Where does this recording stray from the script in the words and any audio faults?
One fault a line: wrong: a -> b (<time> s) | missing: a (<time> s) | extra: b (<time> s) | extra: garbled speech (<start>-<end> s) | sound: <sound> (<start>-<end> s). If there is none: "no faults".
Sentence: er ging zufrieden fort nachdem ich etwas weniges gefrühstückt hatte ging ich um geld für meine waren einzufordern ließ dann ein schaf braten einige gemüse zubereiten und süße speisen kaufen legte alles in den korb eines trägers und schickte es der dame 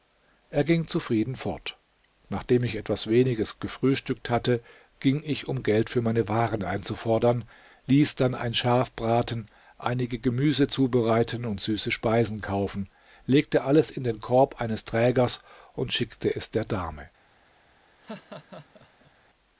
sound: laugh (18.0-19.1 s)